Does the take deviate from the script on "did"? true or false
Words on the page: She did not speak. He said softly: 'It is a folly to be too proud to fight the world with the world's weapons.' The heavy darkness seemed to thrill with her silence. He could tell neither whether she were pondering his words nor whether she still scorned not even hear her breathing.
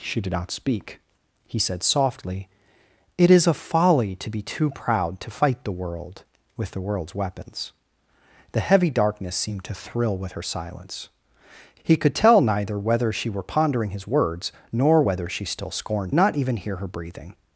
false